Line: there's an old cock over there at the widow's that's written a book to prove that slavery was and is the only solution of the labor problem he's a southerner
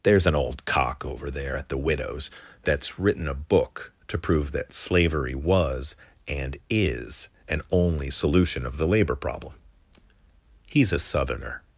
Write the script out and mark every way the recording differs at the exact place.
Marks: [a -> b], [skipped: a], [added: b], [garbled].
there's an old cock over there at the widow's that's written a book to prove that slavery was and is [the -> an] only solution of the labor problem he's a southerner